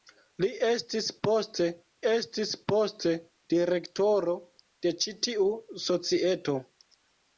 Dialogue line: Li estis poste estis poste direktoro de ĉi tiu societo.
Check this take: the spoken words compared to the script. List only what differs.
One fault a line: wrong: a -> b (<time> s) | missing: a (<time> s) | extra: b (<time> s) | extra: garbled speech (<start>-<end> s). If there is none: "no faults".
no faults